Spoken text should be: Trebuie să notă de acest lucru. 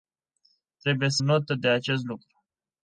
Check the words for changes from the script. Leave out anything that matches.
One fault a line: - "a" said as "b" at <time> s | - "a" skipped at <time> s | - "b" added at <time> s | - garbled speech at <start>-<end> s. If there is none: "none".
none